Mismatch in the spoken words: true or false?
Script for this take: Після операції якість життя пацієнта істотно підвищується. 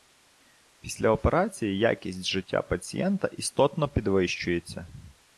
false